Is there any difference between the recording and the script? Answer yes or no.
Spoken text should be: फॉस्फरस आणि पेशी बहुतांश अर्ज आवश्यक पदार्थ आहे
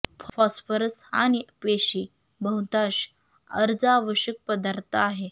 no